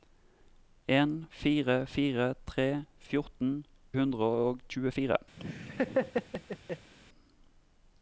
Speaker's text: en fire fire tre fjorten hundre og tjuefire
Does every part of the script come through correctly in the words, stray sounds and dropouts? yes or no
no